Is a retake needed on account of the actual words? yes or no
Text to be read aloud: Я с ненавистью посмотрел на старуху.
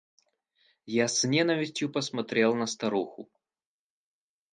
no